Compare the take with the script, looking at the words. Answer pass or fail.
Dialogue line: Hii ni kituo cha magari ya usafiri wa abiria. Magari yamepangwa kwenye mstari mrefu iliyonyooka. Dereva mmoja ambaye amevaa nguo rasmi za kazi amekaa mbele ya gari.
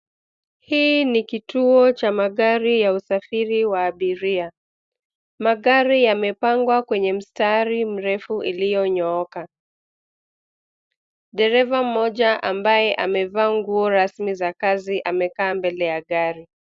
pass